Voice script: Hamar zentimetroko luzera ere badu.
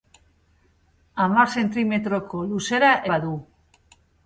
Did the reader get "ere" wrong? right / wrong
wrong